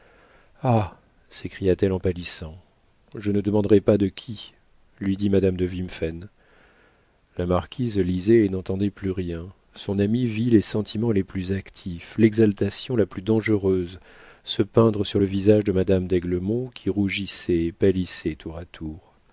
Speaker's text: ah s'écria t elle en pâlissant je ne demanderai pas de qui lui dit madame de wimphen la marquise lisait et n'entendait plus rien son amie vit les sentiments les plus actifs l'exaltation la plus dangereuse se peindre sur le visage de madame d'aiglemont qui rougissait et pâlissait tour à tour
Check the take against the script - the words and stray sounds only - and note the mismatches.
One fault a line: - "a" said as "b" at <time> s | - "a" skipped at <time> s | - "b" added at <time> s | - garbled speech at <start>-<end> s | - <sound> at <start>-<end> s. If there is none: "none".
none